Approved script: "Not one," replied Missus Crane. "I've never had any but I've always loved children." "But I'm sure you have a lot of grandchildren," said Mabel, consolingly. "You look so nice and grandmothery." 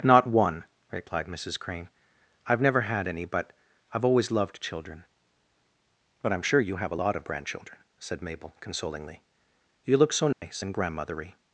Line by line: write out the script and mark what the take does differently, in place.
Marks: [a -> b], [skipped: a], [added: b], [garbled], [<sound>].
"Not one," replied Missus Crane. "I've never had any but I've always loved children." "But I'm sure you have a lot of grandchildren," said Mabel, consolingly. "You look so nice [dropout] and grandmothery."